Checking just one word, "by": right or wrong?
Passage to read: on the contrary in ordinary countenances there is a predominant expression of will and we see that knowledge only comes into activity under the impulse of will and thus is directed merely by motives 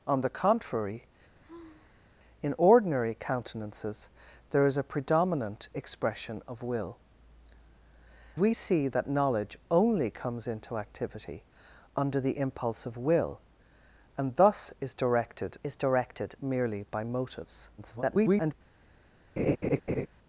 right